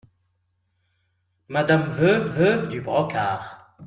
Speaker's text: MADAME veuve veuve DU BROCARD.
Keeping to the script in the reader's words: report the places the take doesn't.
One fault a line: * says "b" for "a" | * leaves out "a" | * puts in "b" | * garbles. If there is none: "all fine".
all fine